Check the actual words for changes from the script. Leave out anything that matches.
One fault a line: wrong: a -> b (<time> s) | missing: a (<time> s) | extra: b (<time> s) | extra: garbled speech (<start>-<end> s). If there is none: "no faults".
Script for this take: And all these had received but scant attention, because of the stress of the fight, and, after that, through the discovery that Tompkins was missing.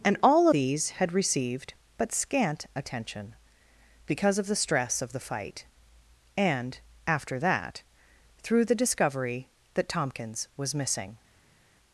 no faults